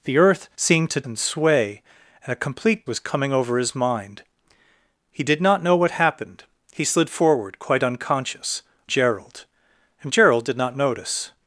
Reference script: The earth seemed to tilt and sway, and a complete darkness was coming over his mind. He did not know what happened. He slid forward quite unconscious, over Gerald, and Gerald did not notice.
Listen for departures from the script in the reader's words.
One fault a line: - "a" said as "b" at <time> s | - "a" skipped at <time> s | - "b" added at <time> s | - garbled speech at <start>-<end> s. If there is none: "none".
- "tilt" skipped at 1.0 s
- "darkness" skipped at 2.9 s
- "over" skipped at 8.6 s